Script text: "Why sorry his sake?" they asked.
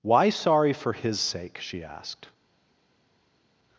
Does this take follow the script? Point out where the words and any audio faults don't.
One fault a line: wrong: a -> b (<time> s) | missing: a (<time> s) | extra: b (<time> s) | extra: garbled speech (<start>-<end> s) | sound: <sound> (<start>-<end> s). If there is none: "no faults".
extra: for (0.7 s)
wrong: they -> she (1.6 s)